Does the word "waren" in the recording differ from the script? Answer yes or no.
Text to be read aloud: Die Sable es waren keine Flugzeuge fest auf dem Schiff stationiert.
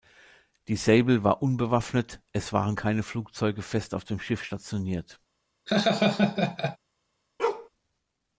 no